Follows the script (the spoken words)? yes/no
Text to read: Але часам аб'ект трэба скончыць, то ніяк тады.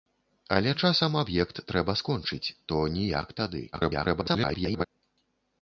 no